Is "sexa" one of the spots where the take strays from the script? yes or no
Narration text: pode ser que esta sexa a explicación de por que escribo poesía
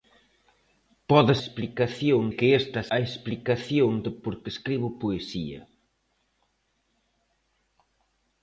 yes